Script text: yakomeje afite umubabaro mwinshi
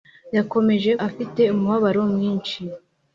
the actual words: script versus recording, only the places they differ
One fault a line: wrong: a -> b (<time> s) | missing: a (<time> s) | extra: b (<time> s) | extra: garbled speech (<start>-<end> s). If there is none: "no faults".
no faults